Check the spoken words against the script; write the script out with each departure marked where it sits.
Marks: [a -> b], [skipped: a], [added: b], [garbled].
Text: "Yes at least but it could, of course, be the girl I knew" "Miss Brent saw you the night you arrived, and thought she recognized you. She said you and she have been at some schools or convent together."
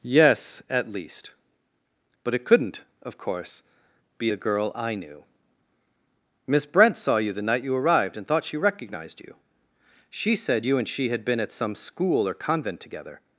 "Yes at least but it [could, -> couldn't] of course, be the girl I knew" "Miss Brent saw you the night you arrived, and thought she recognized you. She said you and she [have -> had] been at some [schools -> school] or convent together."